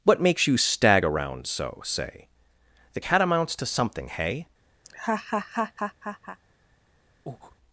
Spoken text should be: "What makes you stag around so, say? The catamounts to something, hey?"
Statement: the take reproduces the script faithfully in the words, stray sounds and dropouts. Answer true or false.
false